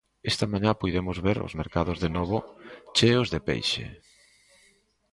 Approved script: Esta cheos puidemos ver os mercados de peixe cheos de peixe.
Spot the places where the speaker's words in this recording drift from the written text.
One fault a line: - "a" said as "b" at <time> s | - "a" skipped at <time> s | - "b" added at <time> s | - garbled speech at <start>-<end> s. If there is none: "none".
- "cheos" said as "mañá" at 0.5 s
- "peixe" said as "novo" at 2.2 s